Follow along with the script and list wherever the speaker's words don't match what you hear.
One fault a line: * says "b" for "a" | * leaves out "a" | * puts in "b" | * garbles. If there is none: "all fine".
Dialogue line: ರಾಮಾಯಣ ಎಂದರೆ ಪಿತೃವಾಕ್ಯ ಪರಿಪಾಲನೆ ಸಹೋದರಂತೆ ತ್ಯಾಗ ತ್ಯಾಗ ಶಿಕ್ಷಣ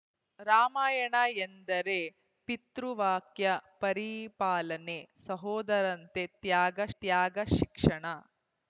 all fine